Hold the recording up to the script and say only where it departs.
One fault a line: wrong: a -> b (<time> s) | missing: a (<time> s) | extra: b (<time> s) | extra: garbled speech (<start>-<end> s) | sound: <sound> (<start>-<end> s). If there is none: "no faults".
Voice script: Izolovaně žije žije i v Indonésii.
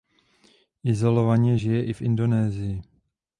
missing: žije (1.8 s)